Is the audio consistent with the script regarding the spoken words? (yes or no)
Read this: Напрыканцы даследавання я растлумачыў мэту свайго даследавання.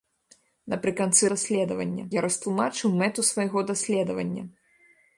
yes